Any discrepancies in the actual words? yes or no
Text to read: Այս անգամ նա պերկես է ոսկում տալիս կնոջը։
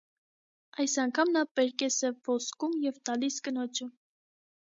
yes